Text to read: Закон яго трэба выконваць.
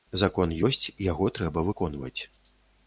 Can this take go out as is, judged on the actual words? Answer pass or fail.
fail